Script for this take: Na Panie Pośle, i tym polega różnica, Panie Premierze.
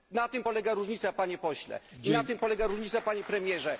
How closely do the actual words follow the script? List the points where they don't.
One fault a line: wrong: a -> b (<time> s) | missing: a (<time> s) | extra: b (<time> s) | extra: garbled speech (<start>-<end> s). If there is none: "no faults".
extra: tym polega różnica (0.3 s)
extra: na (2.1 s)